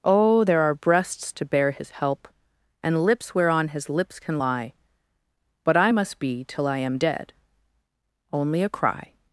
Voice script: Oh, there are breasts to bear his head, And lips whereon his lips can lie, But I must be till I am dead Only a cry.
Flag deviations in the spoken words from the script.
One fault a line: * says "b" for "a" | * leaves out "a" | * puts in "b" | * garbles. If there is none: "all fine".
* says "help" for "head"